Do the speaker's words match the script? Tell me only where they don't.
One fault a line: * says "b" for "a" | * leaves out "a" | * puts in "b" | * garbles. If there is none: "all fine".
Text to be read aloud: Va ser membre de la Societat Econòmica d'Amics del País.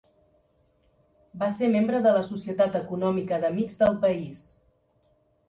all fine